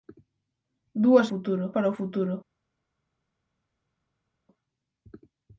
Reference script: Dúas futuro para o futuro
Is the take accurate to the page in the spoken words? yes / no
yes